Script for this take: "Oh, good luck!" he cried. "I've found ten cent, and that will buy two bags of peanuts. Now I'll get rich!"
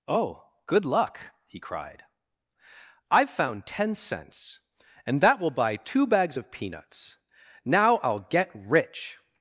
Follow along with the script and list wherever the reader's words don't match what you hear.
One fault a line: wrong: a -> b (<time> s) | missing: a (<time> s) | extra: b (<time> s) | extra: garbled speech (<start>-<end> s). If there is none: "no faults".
wrong: cent -> cents (3.9 s)